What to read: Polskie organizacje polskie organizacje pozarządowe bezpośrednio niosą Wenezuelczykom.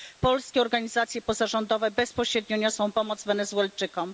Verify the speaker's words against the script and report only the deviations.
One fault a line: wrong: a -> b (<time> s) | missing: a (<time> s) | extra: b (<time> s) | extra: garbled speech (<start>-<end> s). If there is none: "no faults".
missing: polskie organizacje (1.2 s)
extra: pomoc (2.9 s)